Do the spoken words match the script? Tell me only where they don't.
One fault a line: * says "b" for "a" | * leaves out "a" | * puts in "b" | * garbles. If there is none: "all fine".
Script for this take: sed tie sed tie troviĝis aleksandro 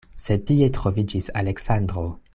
* leaves out "sed tie"